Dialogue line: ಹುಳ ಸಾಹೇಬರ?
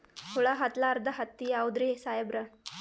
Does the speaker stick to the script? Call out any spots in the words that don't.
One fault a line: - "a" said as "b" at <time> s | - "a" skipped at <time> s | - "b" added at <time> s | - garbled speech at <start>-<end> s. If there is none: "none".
- "ಹತ್ತಲಾರ್ದ ಹತ್ತಿ ಯಾವುದ್ರಿ" added at 0.5 s